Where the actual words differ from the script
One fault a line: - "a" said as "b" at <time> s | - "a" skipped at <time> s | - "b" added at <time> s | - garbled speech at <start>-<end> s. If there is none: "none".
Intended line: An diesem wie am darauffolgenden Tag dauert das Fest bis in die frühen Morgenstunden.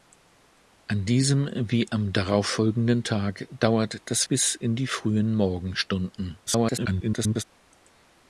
- "Fest" skipped at 4.2 s
- garbled speech at 6.5-7.4 s